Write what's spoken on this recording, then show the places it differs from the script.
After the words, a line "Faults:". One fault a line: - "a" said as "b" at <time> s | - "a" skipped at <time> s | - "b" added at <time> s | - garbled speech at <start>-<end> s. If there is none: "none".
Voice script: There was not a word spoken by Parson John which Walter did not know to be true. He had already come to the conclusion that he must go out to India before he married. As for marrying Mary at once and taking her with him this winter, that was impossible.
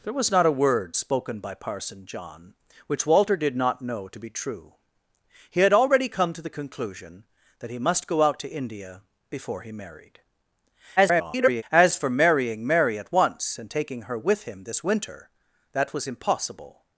There was not a word spoken by Parson John which Walter did not know to be true. He had already come to the conclusion that he must go out to India before he married. [garbled] As for marrying Mary at once and taking her with him this winter, that was impossible.
Faults:
- garbled speech at 11.0-11.6 s